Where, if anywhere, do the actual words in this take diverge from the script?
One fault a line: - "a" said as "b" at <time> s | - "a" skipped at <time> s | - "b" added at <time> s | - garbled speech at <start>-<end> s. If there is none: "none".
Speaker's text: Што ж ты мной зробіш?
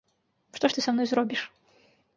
- "са" added at 0.8 s